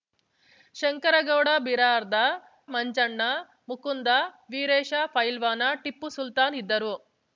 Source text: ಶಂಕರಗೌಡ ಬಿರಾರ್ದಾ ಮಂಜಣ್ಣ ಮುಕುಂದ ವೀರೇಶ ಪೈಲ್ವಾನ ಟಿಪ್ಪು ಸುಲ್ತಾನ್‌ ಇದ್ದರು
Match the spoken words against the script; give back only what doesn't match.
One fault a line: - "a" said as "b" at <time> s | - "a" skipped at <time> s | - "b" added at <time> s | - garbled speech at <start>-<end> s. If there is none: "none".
none